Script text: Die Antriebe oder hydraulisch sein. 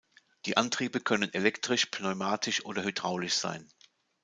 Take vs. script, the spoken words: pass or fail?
fail